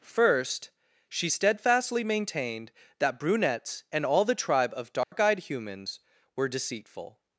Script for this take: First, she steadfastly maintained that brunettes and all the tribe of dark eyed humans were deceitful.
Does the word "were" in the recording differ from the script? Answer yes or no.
no